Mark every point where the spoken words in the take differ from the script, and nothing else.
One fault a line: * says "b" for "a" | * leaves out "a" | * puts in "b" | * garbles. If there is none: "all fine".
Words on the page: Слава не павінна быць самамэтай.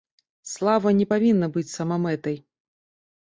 all fine